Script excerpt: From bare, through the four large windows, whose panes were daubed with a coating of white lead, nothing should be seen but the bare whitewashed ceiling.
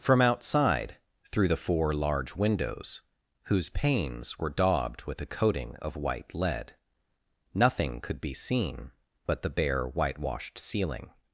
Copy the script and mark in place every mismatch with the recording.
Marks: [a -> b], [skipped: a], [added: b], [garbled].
From [bare, -> outside] through the four large windows, whose panes were daubed with a coating of white lead, nothing [should -> could] be seen but the bare whitewashed ceiling.